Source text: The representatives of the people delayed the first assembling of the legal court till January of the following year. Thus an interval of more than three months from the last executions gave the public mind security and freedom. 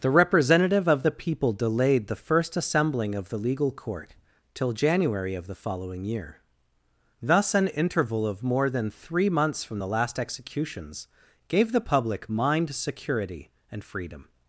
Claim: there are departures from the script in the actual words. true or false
true